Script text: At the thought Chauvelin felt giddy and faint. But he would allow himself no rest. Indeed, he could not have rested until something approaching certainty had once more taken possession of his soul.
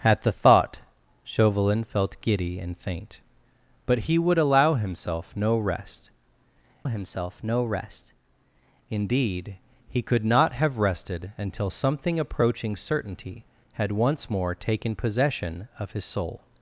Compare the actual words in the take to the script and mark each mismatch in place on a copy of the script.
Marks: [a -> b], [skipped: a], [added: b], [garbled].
At the thought Chauvelin felt giddy and faint. But he would allow himself no rest. [added: himself no rest] Indeed, he could not have rested until something approaching certainty had once more taken possession of his soul.